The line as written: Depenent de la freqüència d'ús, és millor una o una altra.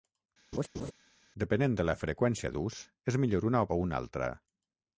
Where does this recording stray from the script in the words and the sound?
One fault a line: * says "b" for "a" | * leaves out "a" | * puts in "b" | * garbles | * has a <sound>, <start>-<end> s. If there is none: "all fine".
* has a laugh, 0.5-0.9 s